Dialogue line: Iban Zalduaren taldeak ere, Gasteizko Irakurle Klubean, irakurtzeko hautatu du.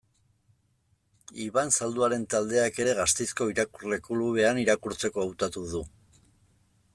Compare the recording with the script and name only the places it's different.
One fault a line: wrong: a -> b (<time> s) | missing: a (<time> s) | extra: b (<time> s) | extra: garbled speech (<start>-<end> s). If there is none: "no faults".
no faults